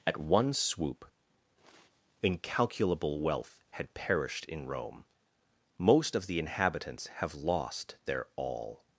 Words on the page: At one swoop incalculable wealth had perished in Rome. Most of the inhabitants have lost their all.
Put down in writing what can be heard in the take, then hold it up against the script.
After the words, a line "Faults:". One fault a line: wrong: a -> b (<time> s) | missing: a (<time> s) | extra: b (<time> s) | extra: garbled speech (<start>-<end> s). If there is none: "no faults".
At one swoop incalculable wealth had perished in Rome. Most of the inhabitants have lost their all.
Faults:
no faults